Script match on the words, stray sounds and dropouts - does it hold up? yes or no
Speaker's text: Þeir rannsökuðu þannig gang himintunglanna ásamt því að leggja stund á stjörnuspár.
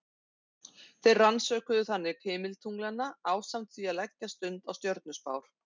no